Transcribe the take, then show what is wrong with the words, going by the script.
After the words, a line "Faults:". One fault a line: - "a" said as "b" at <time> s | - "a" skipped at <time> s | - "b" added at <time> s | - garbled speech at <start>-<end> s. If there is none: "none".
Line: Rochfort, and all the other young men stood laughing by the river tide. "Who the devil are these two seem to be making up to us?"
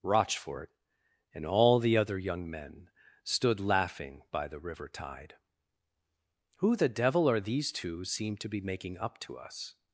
Rochfort, and all the other young men stood laughing by the river tide. "Who the devil are these two seem to be making up to us?"
Faults:
none